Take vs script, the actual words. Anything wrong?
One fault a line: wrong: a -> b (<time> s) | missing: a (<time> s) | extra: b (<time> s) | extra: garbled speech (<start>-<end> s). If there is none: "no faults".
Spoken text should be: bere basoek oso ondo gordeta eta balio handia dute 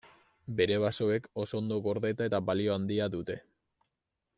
no faults